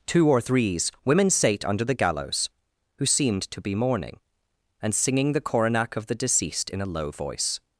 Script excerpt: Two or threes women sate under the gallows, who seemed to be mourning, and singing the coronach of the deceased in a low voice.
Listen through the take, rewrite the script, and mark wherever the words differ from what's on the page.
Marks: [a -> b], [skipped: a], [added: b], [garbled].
Two or threes women sate under the gallows, who seemed to be mourning, and singing the coronach of the deceased in a low voice.